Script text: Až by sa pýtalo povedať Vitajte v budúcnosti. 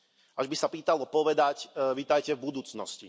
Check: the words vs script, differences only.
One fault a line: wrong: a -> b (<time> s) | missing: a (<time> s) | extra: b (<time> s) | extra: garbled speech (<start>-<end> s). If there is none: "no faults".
no faults